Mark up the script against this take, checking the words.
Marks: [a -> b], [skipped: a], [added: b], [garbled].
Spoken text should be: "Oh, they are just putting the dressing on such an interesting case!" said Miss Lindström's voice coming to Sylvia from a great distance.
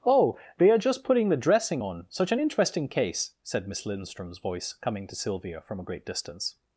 "Oh, they are just putting the dressing on such an interesting case!" said Miss Lindström's voice coming to Sylvia from a great distance.